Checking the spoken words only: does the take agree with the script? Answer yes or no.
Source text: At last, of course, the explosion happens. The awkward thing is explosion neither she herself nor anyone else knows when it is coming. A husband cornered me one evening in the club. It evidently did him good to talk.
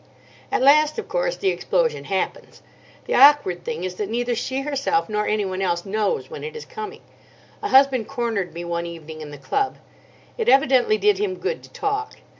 no